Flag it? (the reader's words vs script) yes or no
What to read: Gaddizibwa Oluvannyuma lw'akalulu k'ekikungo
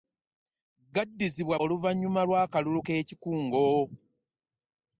no